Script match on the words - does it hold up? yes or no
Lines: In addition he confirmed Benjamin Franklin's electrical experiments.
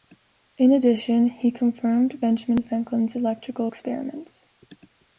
yes